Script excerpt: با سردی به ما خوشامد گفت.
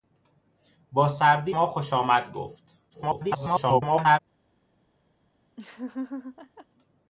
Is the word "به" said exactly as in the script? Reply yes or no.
no